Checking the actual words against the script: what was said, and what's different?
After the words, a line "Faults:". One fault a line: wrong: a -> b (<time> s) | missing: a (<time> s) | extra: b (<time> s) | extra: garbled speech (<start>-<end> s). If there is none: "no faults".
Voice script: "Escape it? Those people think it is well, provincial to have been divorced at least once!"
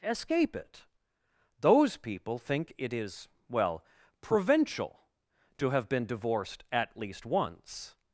"Escape it? Those people think it is well, provincial to have been divorced at least once!"
Faults:
no faults